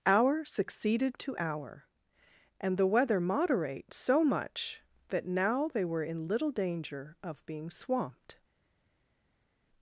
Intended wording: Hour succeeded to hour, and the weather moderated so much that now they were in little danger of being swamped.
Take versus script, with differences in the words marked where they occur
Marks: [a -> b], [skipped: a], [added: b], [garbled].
Hour succeeded to hour, and the weather [moderated -> moderate] so much that now they were in little danger of being swamped.